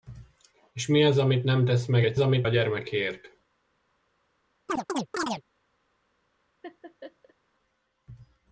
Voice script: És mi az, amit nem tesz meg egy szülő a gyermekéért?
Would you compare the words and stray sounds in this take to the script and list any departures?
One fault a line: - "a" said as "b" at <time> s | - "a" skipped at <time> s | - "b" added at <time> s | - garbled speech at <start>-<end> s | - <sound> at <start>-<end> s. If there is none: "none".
- "szülő" said as "amit" at 2.2 s
- chirp at 4.7-5.4 s
- laugh at 6.6-7.3 s